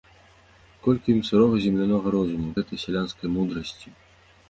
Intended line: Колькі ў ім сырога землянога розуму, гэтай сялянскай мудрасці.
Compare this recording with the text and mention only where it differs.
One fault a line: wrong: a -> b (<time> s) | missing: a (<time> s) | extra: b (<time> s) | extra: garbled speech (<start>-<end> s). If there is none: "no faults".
no faults